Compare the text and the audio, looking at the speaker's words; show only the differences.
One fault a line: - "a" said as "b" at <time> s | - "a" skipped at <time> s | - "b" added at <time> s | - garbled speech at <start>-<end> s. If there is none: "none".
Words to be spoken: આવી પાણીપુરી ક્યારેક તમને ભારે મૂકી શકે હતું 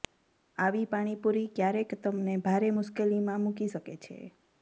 - "મુશ્કેલીમાં" added at 2.8 s
- "હતું" said as "છે" at 4.0 s